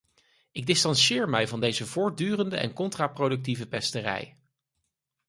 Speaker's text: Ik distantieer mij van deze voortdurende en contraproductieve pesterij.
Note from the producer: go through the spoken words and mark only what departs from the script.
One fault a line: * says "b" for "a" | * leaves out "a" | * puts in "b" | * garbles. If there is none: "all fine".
all fine